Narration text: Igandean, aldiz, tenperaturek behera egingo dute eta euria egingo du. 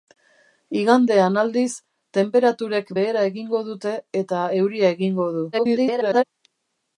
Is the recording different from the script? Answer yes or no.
yes